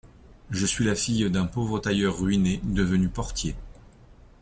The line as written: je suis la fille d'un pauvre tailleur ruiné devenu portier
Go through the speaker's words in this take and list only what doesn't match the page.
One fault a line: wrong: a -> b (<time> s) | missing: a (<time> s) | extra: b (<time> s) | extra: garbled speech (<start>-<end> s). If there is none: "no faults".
no faults